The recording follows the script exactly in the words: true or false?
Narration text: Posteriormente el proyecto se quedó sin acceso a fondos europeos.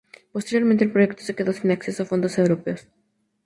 true